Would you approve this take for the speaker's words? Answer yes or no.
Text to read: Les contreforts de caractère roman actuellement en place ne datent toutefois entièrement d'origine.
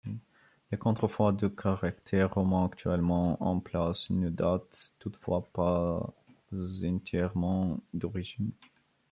no